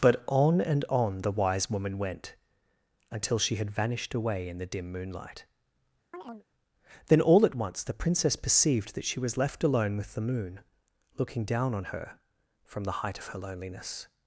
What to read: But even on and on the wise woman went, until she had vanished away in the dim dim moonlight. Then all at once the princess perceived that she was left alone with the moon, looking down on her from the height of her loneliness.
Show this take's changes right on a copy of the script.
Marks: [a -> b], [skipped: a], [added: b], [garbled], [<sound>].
But [skipped: even] on and on the wise woman went, until she had vanished away in the dim [skipped: dim] moonlight. [chirp] Then all at once the princess perceived that she was left alone with the moon, looking down on her from the height of her loneliness.